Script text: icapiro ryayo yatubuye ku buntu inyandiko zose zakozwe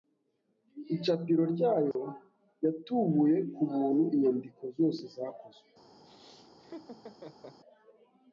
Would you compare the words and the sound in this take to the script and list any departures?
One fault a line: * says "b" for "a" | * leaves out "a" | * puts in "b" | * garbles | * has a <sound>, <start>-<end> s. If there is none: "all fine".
* has a dropout, 1.9-2.0 s
* has a laugh, 6.0-7.6 s